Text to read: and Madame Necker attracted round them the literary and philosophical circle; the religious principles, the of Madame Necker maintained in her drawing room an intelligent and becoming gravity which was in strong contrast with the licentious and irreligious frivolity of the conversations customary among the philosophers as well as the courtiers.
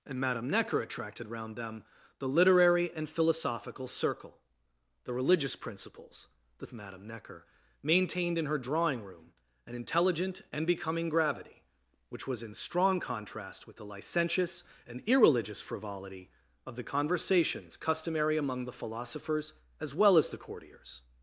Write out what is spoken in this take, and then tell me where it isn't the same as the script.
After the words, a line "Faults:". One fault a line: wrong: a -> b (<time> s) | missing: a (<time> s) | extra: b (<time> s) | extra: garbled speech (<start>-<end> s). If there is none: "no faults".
and Madame Necker attracted round them the literary and philosophical circle; the religious principles, the of Madame Necker maintained in her drawing room an intelligent and becoming gravity which was in strong contrast with the licentious and irreligious frivolity of the conversations customary among the philosophers as well as the courtiers.
Faults:
no faults